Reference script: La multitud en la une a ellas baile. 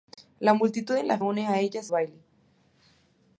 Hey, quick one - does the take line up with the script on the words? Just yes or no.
yes